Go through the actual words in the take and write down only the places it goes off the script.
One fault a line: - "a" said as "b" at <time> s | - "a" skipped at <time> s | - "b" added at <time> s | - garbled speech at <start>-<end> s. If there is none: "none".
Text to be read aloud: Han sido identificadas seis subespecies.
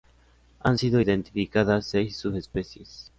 none